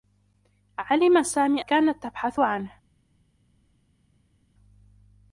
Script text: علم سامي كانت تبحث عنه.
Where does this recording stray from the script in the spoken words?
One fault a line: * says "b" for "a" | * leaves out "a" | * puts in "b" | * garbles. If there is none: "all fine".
all fine